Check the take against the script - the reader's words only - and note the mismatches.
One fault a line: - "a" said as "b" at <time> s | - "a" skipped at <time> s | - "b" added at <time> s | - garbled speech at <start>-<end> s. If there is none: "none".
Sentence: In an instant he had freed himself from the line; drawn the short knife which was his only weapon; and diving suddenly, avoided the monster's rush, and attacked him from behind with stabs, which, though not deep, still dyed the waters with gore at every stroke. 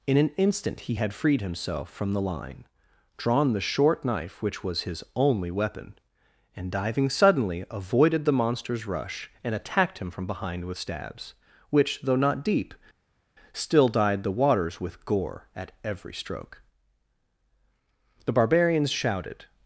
- "The barbarians shouted" added at 18.3 s